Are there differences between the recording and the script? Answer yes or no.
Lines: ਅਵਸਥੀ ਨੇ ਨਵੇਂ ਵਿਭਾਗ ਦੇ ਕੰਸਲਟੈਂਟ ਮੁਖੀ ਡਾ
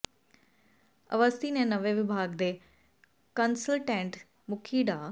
no